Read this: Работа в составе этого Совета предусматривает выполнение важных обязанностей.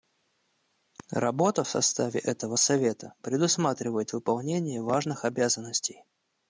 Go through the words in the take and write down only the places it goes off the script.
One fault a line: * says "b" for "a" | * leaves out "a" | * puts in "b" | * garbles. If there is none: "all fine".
all fine